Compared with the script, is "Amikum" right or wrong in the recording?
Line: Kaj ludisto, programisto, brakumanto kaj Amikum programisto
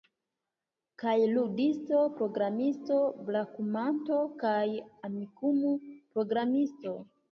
right